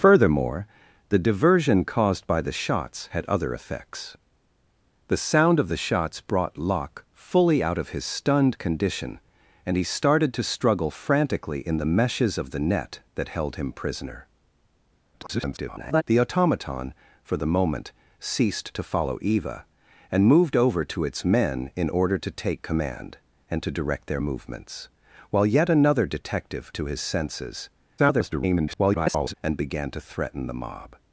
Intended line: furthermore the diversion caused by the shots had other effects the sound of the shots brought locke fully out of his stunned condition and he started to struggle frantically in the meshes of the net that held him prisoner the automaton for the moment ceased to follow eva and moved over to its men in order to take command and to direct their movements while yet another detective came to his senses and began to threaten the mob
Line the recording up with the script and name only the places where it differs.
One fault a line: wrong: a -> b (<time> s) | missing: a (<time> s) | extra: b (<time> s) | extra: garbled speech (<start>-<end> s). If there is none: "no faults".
extra: garbled speech (15.1-16.0 s)
missing: came (26.7 s)
extra: garbled speech (28.0-29.3 s)